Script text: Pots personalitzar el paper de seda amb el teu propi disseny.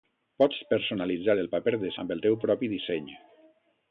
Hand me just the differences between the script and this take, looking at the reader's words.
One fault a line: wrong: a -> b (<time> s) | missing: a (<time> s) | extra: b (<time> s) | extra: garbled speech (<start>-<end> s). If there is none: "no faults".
missing: seda (1.9 s)